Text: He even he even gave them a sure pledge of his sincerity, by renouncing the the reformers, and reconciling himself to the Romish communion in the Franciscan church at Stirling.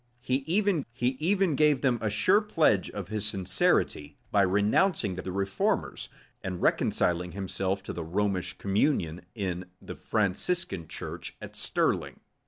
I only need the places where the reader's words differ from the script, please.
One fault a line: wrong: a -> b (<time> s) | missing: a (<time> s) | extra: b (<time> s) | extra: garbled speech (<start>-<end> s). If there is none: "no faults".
no faults